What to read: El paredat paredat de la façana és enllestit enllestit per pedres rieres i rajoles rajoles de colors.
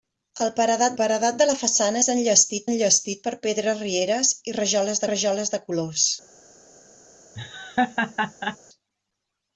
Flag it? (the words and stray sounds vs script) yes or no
yes